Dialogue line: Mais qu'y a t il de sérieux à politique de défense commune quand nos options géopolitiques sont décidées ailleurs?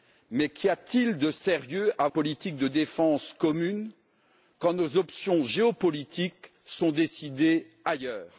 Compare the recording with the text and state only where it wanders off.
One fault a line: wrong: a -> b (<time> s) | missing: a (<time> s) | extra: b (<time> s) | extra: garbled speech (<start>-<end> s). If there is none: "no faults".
no faults